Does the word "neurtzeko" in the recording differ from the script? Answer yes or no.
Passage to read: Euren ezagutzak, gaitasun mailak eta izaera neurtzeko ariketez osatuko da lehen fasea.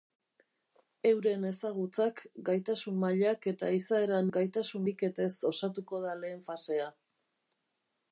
yes